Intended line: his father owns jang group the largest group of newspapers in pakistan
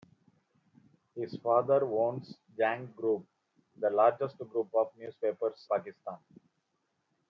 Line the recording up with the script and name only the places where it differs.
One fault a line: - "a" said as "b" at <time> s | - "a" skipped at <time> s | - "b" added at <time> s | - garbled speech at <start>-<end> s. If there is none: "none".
- "in" skipped at 5.7 s